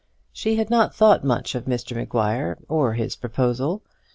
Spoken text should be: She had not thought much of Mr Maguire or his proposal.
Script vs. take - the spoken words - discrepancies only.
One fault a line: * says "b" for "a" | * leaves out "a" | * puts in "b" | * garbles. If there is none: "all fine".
all fine